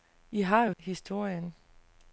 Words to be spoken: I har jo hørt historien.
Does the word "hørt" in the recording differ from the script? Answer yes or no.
yes